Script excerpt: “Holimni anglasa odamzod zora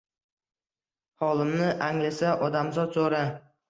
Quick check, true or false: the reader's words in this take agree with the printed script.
true